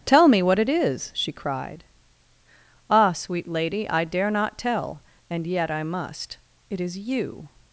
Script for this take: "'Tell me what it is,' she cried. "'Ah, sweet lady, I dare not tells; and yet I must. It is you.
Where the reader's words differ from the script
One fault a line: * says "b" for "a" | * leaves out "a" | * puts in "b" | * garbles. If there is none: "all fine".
* says "tell" for "tells"